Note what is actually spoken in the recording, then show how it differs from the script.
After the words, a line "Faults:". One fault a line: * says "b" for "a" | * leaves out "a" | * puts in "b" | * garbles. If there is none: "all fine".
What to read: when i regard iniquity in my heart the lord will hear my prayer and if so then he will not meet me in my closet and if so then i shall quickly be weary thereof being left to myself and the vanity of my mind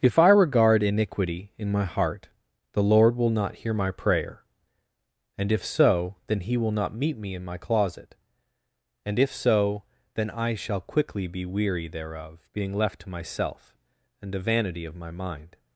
if i regard iniquity in my heart the lord will not hear my prayer and if so then he will not meet me in my closet and if so then i shall quickly be weary thereof being left to myself and the vanity of my mind
Faults:
* says "if" for "when"
* puts in "not"